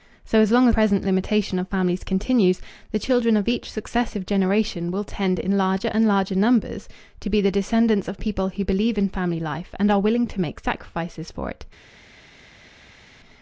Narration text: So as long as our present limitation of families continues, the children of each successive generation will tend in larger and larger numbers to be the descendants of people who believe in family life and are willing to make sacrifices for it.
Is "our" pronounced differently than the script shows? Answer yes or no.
yes